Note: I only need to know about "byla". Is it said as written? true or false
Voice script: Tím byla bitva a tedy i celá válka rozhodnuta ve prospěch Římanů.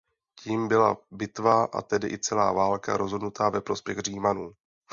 true